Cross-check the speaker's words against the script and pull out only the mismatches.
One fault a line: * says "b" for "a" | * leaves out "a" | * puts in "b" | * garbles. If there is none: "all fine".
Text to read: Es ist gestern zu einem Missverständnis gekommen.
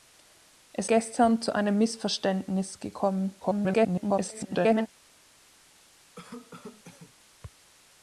* leaves out "ist"
* garbles